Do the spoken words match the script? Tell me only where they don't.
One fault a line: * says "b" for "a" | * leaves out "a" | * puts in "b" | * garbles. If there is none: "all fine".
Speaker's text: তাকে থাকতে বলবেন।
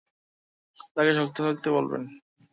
* puts in "শক্ত"